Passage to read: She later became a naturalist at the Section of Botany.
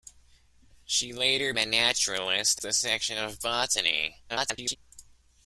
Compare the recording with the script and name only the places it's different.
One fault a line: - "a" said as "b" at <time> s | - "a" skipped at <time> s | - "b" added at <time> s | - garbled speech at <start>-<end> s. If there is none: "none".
- "became" skipped at 1.5 s
- "at" skipped at 2.6 s
- garbled speech at 4.3-4.8 s